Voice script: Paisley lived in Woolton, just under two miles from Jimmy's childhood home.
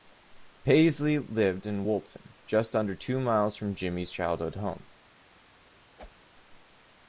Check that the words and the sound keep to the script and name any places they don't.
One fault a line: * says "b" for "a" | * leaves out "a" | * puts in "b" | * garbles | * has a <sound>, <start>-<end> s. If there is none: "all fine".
* has a whoosh, 6.0-6.3 s